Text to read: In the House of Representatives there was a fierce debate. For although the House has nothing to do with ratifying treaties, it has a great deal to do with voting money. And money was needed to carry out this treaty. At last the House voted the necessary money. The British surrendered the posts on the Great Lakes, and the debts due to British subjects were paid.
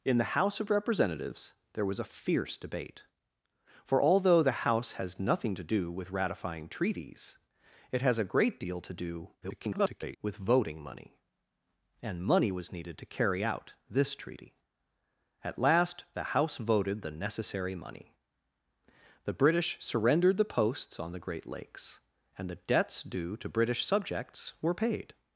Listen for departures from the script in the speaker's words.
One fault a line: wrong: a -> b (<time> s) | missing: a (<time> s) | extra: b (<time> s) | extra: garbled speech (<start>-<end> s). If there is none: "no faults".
extra: garbled speech (9.4-10.2 s)